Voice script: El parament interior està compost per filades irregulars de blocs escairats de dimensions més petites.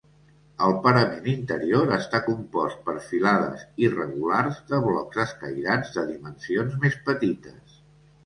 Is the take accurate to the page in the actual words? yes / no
yes